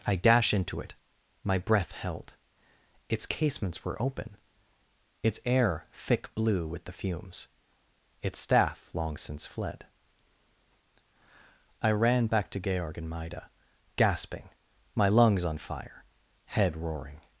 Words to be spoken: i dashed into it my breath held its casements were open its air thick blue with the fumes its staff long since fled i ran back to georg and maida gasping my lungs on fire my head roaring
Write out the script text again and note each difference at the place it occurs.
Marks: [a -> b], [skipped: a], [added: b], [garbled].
i [dashed -> dash] into it my breath held its casements were open its air thick blue with the fumes its staff long since fled i ran back to georg and maida gasping my lungs on fire [skipped: my] head roaring